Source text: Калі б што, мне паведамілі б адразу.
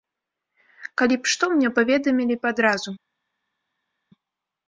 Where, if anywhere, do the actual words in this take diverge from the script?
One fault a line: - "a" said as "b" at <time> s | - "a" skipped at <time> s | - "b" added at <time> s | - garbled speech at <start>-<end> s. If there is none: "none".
none